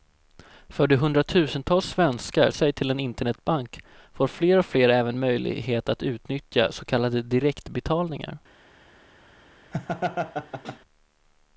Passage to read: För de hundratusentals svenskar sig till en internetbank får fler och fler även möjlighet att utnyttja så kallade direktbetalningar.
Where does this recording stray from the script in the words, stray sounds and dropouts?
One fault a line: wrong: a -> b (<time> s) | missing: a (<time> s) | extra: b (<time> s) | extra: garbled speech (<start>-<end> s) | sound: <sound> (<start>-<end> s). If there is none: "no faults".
sound: laugh (9.7-10.8 s)